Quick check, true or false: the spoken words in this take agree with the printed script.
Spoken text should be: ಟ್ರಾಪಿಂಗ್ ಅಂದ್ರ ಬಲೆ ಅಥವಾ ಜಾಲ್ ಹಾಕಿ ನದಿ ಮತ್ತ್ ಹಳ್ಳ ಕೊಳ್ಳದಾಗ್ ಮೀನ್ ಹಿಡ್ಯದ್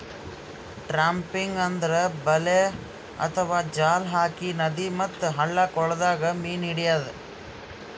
true